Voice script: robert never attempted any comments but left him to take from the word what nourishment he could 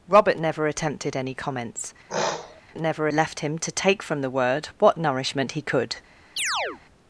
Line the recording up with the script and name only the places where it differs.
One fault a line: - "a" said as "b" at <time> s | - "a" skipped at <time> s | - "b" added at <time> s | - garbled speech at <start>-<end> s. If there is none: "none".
- "but" said as "never" at 2.8 s